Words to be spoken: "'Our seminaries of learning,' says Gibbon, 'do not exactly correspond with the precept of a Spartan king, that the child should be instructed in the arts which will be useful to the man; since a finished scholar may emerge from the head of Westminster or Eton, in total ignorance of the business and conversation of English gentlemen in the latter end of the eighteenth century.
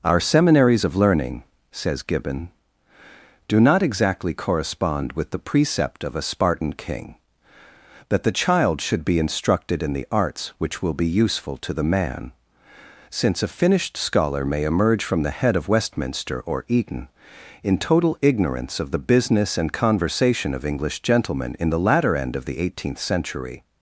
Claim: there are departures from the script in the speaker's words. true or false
false